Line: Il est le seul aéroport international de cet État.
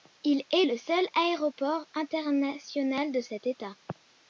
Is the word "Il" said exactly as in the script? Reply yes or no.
yes